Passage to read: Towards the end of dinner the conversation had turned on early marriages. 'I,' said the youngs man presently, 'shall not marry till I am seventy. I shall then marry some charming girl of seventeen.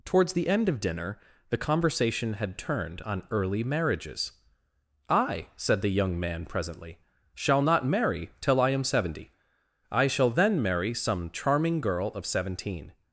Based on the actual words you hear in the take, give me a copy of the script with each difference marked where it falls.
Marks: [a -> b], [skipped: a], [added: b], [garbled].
Towards the end of dinner the conversation had turned on early marriages. 'I,' said the [youngs -> young] man presently, 'shall not marry till I am seventy. I shall then marry some charming girl of seventeen.